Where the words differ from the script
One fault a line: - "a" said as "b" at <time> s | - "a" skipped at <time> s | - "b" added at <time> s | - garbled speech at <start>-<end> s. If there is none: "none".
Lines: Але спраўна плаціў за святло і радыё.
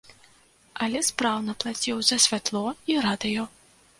none